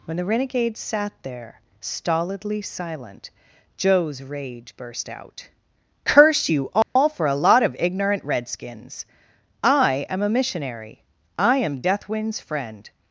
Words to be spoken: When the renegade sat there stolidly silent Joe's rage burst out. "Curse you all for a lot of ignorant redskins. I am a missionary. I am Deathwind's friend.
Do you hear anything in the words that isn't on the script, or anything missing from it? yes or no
no